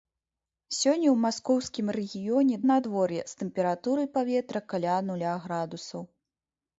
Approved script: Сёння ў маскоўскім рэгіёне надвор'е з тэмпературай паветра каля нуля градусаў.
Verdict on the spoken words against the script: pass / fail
pass